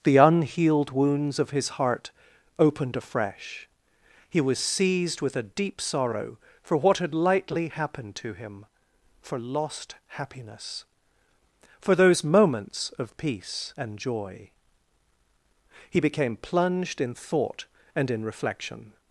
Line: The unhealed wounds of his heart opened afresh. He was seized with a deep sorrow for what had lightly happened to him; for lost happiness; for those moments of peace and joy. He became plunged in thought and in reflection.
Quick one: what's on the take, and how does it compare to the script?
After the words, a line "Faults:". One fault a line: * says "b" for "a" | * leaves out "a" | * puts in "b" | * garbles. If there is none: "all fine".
The unhealed wounds of his heart opened afresh. He was seized with a deep sorrow for what had lightly happened to him; for lost happiness; for those moments of peace and joy. He became plunged in thought and in reflection.
Faults:
all fine